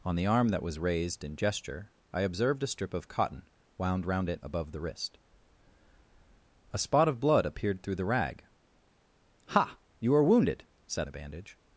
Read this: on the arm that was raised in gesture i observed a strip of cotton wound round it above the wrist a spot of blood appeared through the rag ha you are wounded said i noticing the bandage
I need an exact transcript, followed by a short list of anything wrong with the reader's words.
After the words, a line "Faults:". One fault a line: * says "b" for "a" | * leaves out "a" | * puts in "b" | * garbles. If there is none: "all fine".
on the arm that was raised in gesture i observed a strip of cotton wound round it above the wrist a spot of blood appeared through the rag ha you are wounded said the bandage
Faults:
* leaves out "i noticing"